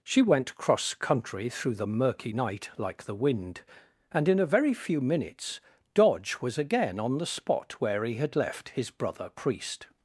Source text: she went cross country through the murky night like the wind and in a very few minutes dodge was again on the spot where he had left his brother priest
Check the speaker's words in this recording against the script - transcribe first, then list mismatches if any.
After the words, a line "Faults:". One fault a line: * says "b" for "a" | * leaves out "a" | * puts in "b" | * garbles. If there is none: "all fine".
she went cross country through the murky night like the wind and in a very few minutes dodge was again on the spot where he had left his brother priest
Faults:
all fine